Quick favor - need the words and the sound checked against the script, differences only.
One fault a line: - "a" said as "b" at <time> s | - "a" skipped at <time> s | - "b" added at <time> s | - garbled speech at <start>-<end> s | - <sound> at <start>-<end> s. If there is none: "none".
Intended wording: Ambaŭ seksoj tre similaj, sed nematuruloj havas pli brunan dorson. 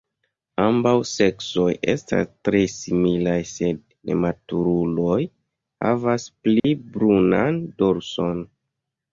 - "estas" added at 1.9 s
- dropout at 6.6-6.6 s